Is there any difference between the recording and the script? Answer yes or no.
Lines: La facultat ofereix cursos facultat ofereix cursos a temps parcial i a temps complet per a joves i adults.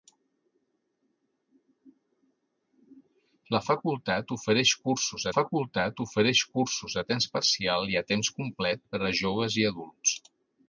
no